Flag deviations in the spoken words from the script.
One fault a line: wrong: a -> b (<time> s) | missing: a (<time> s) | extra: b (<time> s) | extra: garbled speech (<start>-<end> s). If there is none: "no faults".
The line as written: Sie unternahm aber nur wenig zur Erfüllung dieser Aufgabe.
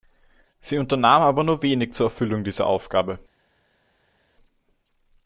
no faults